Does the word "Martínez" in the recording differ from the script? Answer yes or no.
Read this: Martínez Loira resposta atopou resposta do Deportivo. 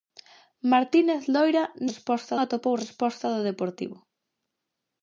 no